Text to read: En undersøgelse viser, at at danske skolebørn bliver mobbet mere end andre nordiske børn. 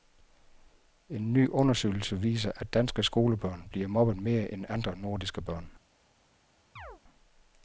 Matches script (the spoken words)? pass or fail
fail